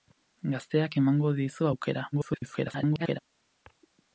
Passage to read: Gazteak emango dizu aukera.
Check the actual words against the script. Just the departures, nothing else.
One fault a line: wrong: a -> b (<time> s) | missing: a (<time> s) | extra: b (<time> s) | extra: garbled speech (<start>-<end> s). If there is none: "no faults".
extra: garbled speech (2.1-3.2 s)